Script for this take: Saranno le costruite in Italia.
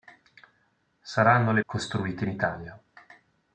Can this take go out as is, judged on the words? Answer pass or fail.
pass